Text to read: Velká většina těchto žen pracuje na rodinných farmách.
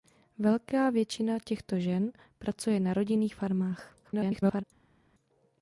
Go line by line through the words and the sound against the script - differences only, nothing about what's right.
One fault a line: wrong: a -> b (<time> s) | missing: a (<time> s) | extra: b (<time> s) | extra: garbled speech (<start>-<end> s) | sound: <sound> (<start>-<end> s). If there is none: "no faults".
extra: garbled speech (4.0-4.6 s)